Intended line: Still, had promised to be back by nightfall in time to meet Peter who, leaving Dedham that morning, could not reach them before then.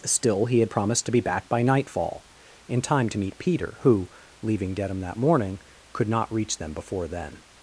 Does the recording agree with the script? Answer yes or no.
no